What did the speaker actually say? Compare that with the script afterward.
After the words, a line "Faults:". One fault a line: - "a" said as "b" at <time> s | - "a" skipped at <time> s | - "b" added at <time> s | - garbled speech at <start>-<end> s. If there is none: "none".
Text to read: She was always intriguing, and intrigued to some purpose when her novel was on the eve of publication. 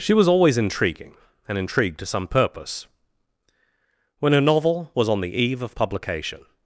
She was always intriguing, and intrigued to some purpose when her novel was on the eve of publication.
Faults:
none